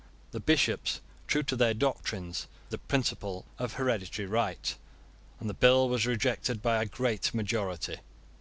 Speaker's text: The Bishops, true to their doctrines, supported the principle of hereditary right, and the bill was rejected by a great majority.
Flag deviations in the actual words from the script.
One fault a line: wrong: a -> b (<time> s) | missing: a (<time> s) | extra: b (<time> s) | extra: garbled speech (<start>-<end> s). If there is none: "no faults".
missing: supported (2.5 s)